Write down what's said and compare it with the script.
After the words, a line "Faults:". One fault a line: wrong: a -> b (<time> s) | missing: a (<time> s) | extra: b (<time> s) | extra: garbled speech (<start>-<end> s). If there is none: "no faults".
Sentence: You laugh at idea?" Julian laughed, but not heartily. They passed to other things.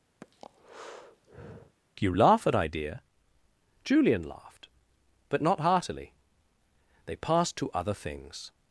You laugh at idea?" Julian laughed, but not heartily. They passed to other things.
Faults:
no faults